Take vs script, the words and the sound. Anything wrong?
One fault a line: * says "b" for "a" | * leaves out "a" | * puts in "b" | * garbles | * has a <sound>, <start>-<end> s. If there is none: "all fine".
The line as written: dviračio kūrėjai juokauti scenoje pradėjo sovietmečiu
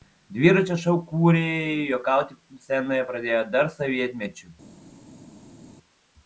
* puts in "šou"
* puts in "dar"